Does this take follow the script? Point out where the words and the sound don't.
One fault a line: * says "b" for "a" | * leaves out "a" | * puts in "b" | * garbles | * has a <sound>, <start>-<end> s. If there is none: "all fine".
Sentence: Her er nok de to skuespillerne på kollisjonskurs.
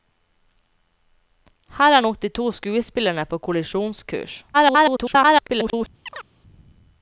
* garbles
* has a chirp, 6.1-6.3 s